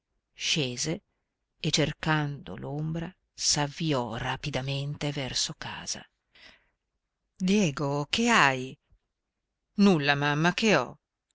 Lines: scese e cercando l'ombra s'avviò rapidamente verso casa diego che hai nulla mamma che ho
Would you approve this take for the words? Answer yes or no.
yes